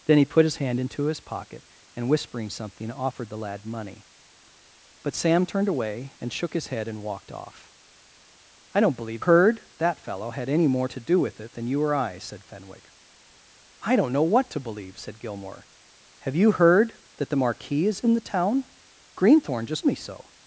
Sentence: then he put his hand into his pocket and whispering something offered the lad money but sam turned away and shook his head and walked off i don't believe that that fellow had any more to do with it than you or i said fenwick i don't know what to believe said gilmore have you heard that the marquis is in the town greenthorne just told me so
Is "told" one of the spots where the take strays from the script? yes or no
yes